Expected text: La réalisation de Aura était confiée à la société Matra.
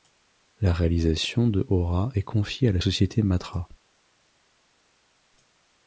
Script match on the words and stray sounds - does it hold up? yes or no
no